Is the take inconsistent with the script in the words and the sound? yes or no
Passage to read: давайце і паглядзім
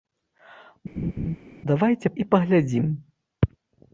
yes